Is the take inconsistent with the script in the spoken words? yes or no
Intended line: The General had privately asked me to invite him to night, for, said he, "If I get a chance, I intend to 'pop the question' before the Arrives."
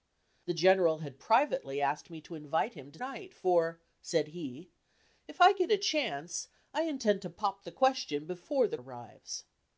no